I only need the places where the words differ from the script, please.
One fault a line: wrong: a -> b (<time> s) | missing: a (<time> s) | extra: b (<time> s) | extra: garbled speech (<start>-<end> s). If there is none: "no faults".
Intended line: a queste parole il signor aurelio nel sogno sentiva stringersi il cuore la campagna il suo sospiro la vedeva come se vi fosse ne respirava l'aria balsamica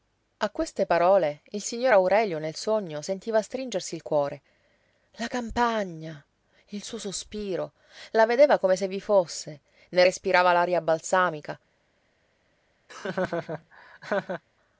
no faults